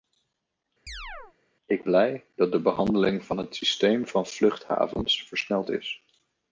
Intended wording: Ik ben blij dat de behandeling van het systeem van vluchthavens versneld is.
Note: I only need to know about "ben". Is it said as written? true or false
false